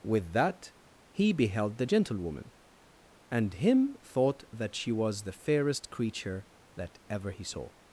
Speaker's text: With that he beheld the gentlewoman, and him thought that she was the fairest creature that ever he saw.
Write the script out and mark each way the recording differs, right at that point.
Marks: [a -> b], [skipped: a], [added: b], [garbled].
With that he beheld the gentlewoman, and him thought that she was the fairest creature that ever he saw.